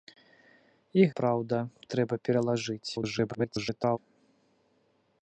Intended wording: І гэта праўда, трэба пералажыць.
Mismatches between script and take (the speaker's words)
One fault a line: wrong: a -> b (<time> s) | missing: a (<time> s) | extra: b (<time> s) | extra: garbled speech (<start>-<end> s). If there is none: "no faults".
missing: гэта (1.0 s)
extra: garbled speech (2.9-4.0 s)